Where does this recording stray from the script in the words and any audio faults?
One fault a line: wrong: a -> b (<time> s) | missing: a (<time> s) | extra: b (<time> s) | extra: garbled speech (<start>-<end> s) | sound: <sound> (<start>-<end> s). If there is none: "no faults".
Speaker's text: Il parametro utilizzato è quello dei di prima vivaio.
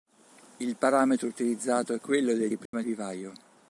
sound: dropout (2.7-2.7 s)